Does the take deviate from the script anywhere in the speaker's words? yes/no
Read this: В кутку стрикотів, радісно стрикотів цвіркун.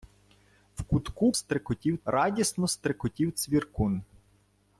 no